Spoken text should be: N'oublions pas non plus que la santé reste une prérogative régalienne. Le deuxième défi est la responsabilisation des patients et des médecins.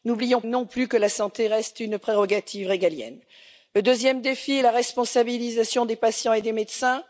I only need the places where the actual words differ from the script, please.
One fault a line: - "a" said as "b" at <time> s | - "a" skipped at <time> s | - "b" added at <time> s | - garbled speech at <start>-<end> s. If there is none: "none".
- "pas" skipped at 0.4 s